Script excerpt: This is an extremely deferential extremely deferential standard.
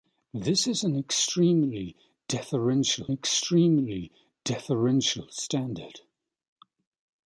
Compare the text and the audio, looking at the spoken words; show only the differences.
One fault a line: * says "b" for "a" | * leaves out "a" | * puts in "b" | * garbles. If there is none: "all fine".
all fine